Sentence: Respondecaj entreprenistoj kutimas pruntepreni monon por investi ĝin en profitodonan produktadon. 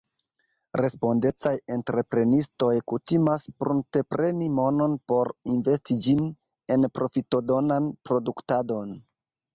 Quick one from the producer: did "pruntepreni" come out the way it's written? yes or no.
yes